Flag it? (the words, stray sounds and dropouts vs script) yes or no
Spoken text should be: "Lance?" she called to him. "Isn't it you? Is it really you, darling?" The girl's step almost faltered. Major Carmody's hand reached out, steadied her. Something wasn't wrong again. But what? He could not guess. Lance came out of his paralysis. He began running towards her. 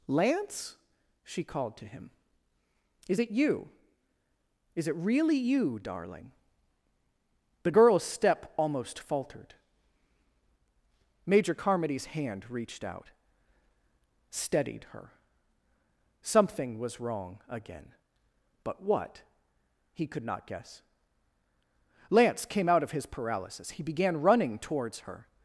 yes